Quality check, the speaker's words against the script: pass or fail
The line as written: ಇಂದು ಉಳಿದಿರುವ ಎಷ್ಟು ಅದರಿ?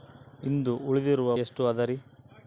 pass